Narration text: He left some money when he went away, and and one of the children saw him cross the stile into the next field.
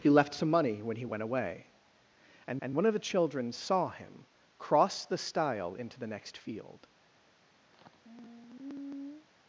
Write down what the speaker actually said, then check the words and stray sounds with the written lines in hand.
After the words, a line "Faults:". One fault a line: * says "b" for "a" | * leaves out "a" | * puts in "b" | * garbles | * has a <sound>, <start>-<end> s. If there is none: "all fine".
He left some money when he went away, and and one of the children saw him cross the stile into the next field.
Faults:
* has a sigh, 7.7-9.3 s